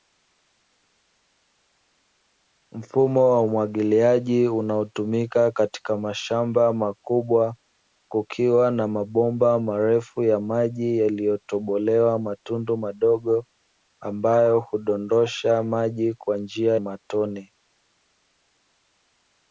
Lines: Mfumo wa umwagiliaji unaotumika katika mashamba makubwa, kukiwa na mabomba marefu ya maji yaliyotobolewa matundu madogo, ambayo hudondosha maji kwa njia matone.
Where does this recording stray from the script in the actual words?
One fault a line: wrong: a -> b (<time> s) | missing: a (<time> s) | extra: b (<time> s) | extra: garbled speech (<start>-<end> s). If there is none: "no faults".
no faults